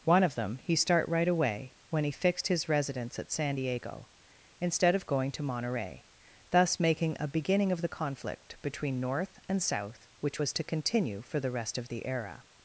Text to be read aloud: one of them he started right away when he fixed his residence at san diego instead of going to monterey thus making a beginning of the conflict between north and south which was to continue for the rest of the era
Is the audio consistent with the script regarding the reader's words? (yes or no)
no